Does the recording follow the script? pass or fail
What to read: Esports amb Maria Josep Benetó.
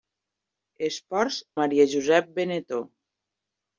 fail